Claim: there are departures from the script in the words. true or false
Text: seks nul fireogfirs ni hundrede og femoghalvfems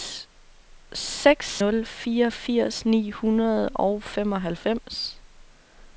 false